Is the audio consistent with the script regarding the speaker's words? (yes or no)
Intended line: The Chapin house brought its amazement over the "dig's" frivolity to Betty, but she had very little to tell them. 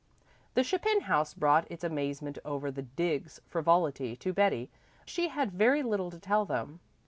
no